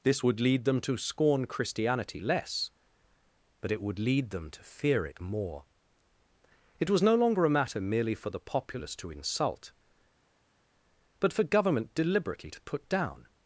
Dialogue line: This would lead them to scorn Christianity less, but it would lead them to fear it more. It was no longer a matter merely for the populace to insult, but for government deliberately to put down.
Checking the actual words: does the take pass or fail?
pass